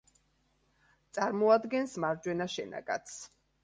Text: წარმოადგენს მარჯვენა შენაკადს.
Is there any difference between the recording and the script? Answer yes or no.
no